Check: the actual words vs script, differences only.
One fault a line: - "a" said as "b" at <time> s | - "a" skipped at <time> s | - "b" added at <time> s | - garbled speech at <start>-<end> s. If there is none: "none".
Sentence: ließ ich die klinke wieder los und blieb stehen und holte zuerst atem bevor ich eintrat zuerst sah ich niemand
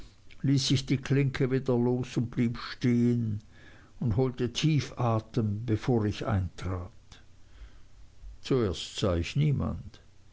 - "zuerst" said as "tief" at 4.5 s